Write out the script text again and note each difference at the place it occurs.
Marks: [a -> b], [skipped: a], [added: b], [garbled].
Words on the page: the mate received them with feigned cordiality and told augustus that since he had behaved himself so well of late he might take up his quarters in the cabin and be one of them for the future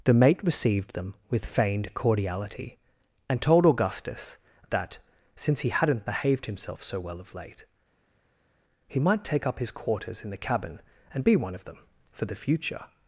the mate received them with feigned cordiality and told augustus that since he [had -> hadn't] behaved himself so well of late he might take up his quarters in the cabin and be one of them for the future